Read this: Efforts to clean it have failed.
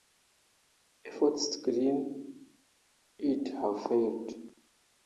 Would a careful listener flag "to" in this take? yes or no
no